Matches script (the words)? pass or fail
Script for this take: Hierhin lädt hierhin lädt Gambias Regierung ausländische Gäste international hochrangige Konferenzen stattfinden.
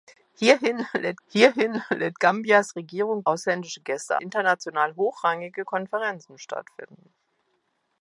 pass